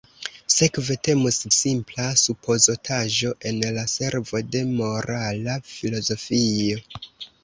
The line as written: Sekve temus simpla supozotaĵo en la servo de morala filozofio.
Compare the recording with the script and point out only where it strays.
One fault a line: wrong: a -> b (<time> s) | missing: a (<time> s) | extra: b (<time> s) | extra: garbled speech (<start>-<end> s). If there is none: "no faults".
no faults